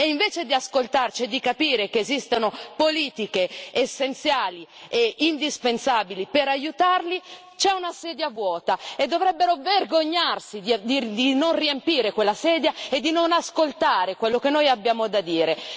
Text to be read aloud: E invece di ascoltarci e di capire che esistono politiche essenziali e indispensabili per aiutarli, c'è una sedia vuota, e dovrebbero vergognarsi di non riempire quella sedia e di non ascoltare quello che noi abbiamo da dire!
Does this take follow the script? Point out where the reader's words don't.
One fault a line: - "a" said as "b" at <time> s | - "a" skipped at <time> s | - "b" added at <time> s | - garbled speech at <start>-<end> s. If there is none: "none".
none